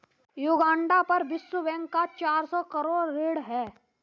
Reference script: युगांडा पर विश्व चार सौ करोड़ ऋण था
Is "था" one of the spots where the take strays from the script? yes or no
yes